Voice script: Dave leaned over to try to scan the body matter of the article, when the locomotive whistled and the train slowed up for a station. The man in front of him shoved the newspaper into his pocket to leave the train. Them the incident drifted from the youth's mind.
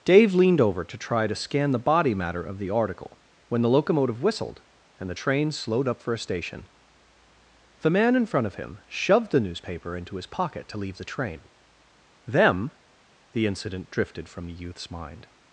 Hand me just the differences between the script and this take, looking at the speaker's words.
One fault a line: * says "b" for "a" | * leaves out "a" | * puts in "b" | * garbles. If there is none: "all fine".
all fine